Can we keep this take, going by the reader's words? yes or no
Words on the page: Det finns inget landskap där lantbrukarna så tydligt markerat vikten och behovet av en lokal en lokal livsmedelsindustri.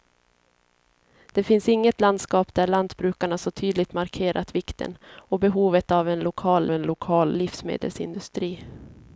yes